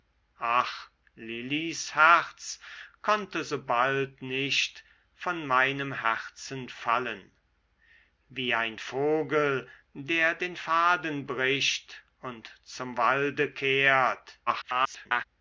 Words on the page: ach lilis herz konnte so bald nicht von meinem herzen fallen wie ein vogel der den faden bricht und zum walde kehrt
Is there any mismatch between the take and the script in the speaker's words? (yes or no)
yes